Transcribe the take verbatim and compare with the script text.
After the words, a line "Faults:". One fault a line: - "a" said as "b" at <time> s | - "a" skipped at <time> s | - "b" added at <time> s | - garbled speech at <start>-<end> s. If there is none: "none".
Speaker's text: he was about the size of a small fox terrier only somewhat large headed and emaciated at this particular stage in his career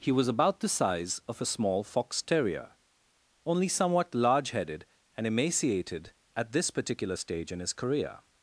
he was about the size of a small fox terrier only somewhat large headed and emaciated at this particular stage in his career
Faults:
none